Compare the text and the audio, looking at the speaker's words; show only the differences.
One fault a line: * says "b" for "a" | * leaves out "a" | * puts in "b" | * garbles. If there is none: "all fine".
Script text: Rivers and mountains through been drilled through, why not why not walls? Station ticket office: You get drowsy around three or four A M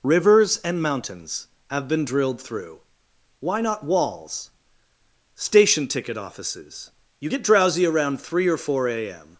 * says "have" for "through"
* leaves out "why not"
* says "offices" for "office"